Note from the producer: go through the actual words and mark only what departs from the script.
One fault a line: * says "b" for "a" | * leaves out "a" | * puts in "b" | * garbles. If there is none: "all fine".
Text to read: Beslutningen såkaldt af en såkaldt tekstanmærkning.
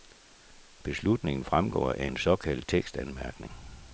* says "fremgår" for "såkaldt"